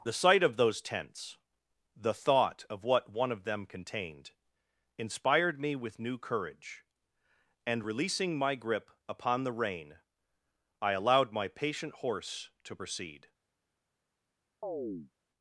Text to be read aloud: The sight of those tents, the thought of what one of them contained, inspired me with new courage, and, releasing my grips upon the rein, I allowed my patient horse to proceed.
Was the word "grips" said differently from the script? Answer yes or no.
yes